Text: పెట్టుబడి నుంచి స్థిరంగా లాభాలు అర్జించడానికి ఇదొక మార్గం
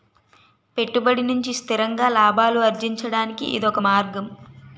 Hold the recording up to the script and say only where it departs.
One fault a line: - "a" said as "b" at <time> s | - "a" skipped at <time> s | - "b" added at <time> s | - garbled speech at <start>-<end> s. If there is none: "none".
none